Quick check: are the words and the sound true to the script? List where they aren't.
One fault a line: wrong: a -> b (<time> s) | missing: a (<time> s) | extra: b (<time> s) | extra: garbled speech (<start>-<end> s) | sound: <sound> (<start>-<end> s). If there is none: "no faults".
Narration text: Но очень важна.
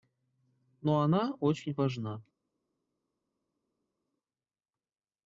extra: она (1.0 s)